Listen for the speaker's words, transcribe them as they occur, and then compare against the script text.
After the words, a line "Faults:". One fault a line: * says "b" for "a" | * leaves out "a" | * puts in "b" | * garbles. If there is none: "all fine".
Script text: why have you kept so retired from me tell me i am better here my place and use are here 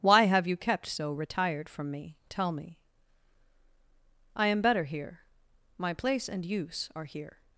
why have you kept so retired from me tell me i am better here my place and use are here
Faults:
all fine